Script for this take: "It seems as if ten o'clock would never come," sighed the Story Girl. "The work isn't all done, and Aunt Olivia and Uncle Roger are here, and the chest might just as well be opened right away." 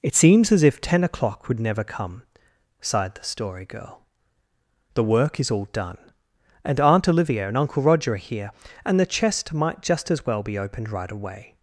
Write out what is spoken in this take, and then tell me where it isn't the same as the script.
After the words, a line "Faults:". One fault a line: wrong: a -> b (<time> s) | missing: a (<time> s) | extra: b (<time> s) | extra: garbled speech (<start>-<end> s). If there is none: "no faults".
"It seems as if ten o'clock would never come," sighed the Story Girl. "The work is all done, and Aunt Olivia and Uncle Roger are here, and the chest might just as well be opened right away."
Faults:
wrong: isn't -> is (5.4 s)